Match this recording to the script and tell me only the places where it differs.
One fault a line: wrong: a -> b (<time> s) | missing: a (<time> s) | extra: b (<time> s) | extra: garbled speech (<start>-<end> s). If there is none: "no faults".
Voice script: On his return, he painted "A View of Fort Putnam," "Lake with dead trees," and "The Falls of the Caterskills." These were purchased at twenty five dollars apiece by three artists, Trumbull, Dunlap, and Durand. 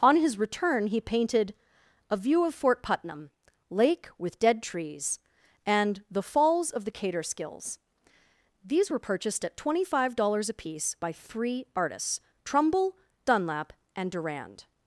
no faults